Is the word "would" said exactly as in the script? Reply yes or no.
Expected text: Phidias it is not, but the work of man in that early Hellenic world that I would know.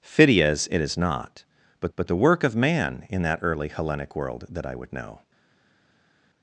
yes